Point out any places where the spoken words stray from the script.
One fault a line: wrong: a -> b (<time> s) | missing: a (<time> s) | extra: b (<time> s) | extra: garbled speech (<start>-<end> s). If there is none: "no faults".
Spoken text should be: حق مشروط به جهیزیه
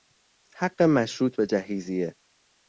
no faults